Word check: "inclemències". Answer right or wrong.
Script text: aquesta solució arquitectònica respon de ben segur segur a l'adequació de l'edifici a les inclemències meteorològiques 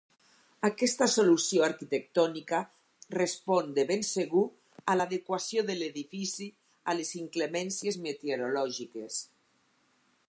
right